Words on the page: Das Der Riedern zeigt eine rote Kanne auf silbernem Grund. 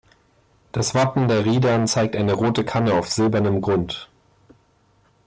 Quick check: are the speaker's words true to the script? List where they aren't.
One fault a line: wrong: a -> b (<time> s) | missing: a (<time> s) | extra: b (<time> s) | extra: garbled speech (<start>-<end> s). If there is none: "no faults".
extra: Wappen (0.9 s)